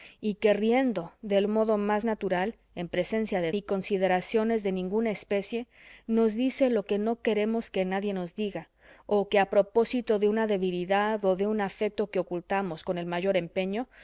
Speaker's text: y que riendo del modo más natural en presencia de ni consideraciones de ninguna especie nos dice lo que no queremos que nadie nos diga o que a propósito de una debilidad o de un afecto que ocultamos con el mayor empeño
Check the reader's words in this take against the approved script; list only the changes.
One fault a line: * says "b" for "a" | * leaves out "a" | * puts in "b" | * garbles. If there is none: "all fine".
all fine